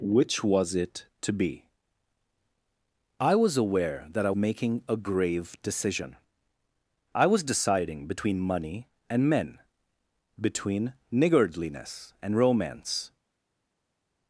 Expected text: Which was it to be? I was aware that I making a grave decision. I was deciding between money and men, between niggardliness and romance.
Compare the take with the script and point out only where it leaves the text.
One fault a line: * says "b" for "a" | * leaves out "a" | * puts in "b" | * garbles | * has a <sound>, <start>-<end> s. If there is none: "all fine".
all fine